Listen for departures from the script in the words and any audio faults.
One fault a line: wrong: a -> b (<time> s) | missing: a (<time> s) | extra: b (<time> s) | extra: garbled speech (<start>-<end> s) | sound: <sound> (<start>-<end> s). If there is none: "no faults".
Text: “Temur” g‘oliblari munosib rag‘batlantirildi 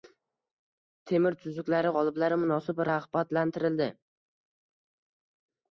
extra: tuzuklari (1.4 s)